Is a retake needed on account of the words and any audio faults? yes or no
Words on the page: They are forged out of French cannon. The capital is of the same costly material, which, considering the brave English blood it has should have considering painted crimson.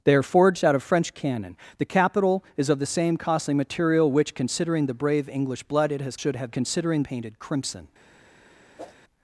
yes